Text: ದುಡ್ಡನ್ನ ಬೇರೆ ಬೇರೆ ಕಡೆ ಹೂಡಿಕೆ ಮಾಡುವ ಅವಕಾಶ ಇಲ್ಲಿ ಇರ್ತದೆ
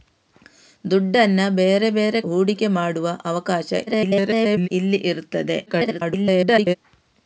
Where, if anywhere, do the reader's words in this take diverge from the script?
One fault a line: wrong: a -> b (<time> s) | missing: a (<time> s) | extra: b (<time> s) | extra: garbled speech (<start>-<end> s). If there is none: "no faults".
missing: ಕಡೆ (2.2 s)
extra: garbled speech (3.9-4.7 s)
extra: garbled speech (5.7-6.8 s)